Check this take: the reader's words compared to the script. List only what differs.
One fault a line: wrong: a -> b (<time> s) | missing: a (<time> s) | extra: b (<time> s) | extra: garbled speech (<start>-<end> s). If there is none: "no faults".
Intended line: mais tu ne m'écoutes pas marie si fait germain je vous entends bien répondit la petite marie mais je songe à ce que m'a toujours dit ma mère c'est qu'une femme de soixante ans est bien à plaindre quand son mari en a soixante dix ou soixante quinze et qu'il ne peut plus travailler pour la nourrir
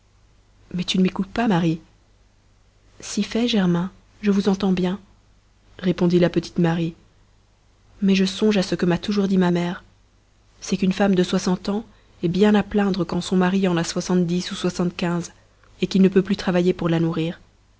no faults